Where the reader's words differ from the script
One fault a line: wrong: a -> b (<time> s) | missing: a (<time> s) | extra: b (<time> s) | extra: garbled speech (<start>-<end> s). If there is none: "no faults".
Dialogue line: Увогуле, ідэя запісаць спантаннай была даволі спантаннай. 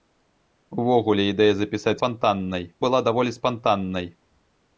no faults